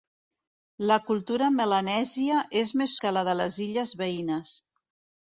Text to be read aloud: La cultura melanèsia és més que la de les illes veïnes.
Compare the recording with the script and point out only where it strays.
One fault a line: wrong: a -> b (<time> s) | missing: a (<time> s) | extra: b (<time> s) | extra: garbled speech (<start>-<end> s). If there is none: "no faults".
no faults